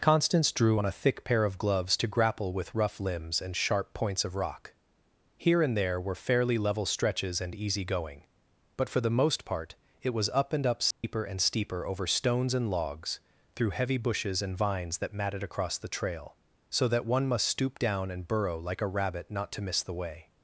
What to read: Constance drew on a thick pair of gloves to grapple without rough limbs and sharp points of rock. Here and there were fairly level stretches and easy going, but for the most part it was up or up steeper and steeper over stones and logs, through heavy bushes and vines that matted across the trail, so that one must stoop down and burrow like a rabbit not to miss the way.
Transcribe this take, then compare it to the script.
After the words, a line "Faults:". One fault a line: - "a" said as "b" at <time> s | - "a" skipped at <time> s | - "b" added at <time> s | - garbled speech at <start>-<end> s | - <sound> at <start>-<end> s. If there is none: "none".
Constance drew on a thick pair of gloves to grapple with rough limbs and sharp points of rock. Here and there were fairly level stretches and easy going, but for the most part it was up and up steeper and steeper over stones and logs, through heavy bushes and vines that matted across the trail, so that one must stoop down and burrow like a rabbit not to miss the way.
Faults:
- "without" said as "with" at 2.5 s
- "or" said as "and" at 10.5 s
- dropout at 10.9-11.0 s